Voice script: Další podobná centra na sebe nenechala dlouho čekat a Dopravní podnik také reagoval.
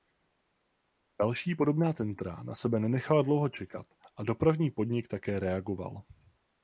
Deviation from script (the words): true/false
false